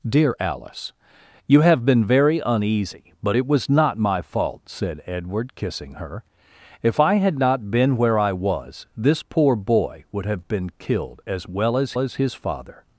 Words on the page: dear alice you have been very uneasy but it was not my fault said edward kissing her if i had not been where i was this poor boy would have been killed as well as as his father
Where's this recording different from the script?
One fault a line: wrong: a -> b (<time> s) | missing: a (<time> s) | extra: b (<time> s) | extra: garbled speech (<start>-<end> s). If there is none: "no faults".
no faults